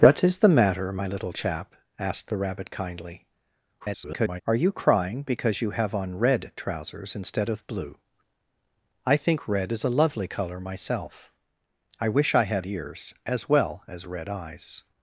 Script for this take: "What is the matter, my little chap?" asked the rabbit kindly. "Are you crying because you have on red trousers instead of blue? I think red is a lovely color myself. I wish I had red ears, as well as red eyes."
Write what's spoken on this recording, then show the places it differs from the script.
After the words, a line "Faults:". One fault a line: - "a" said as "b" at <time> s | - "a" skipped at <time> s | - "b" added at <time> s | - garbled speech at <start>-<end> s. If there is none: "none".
"What is the matter, my little chap?" asked the rabbit kindly. [garbled] "Are you crying because you have on red trousers instead of blue? I think red is a lovely color myself. I wish I had ears, as well as red eyes."
Faults:
- garbled speech at 3.8-4.4 s
- "red" skipped at 12.7 s